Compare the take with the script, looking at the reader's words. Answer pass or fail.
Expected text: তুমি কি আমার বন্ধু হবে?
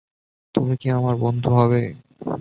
pass